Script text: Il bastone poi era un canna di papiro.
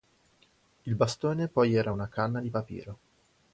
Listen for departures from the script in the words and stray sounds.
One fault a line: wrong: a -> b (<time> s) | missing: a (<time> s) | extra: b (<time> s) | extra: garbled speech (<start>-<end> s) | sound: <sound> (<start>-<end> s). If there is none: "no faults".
wrong: un -> una (1.9 s)